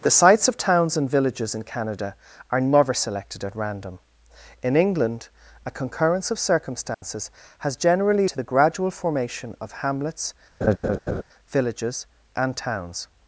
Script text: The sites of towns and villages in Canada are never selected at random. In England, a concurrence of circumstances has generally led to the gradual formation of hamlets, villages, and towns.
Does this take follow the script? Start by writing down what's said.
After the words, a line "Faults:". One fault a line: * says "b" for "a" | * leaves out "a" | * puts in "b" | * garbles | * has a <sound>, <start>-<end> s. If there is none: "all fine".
The sites of towns and villages in Canada are never selected at random. In England, a concurrence of circumstances has generally to the gradual formation of hamlets, villages, and towns.
Faults:
* has a dropout, 6.9-7.0 s
* leaves out "led"
* has a laugh, 10.6-11.2 s